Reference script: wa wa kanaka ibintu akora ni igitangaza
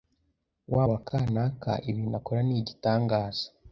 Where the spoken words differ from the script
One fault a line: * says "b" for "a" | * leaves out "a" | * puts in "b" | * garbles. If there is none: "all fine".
all fine